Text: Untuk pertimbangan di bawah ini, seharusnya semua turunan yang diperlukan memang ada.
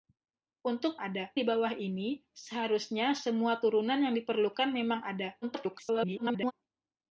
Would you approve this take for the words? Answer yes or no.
no